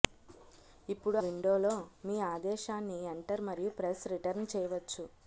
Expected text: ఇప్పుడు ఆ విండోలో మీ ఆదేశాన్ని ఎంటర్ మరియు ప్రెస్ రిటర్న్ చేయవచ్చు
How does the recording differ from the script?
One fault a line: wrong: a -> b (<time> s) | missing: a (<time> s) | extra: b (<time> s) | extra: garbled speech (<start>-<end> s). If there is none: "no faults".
missing: ఆ (1.2 s)